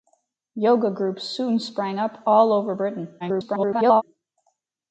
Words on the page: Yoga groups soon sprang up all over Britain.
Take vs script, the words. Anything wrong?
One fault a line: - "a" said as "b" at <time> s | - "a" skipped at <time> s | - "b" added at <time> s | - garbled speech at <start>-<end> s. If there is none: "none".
- garbled speech at 3.2-4.0 s